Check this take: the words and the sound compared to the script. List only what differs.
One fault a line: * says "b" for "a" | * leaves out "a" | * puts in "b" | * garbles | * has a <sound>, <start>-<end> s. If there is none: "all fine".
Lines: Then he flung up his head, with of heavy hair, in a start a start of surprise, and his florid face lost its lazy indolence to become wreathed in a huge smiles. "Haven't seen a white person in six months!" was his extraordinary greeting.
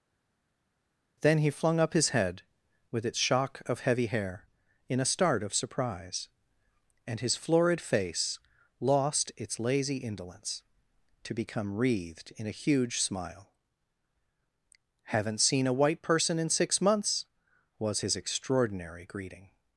* puts in "its shock"
* leaves out "a start"
* says "smile" for "smiles"